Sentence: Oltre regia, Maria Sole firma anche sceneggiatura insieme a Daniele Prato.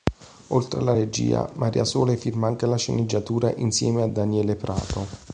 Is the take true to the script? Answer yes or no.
no